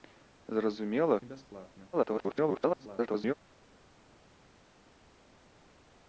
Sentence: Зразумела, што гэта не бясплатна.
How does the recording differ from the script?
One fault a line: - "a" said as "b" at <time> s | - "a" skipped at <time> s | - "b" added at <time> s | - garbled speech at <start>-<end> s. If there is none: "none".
- "што гэта" skipped at 1.2 s
- garbled speech at 1.9-3.3 s